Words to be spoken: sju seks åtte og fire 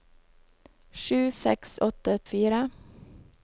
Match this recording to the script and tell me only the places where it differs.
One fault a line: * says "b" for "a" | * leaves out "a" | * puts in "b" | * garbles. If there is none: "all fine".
all fine